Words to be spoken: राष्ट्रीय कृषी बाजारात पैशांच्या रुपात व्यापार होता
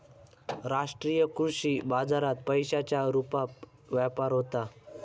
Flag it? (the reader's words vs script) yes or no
no